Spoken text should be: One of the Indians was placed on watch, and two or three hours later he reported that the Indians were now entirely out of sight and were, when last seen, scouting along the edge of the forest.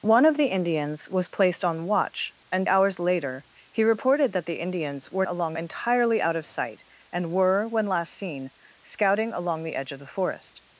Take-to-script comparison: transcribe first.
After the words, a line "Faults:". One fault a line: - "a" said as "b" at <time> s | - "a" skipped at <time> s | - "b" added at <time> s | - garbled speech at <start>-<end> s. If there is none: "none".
One of the Indians was placed on watch, and hours later he reported that the Indians were along entirely out of sight and were, when last seen, scouting along the edge of the forest.
Faults:
- "two or three" skipped at 2.7 s
- "now" said as "along" at 5.3 s